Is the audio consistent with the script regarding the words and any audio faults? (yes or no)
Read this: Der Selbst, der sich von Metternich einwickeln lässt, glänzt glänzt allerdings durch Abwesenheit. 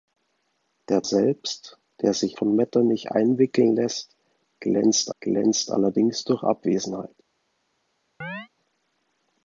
no